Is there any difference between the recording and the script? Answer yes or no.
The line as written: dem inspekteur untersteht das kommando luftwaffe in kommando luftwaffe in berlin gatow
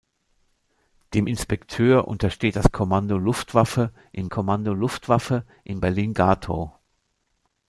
no